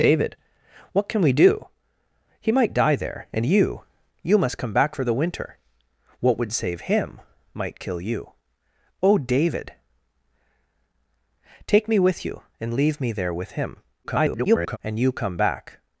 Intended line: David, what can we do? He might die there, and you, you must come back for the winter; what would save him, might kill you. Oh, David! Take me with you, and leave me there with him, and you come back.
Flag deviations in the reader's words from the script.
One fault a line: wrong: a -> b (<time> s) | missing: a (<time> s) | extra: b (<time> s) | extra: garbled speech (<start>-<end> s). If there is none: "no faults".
extra: garbled speech (14.0-14.8 s)